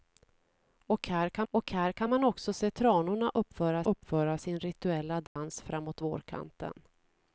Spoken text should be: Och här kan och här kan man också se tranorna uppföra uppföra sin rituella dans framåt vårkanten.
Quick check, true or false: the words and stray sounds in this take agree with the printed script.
false